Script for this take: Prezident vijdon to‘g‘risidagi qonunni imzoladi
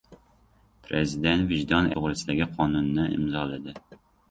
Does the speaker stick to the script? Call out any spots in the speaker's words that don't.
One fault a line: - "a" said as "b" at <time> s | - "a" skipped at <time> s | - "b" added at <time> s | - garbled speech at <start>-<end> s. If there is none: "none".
none